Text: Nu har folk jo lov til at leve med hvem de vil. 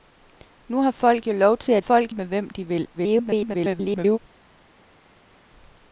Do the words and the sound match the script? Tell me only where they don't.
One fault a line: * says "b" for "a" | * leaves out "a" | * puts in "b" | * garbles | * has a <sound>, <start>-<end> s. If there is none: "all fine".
* says "folk" for "leve"
* garbles